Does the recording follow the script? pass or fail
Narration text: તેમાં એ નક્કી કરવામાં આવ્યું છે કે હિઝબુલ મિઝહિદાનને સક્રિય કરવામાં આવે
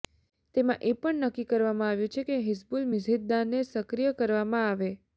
fail